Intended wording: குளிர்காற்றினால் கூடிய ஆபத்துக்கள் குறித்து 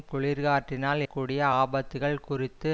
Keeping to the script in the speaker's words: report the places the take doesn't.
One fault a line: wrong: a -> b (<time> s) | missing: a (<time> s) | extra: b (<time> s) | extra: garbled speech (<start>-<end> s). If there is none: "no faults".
no faults